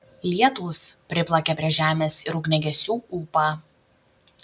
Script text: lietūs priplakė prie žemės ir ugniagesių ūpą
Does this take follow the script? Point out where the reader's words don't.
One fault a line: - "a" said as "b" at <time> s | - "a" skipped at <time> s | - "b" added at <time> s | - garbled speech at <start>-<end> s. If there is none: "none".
none